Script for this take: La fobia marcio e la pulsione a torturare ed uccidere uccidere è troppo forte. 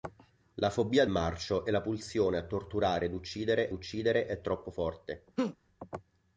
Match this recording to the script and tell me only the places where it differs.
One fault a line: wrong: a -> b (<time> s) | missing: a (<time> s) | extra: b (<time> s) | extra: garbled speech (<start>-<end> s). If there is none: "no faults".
no faults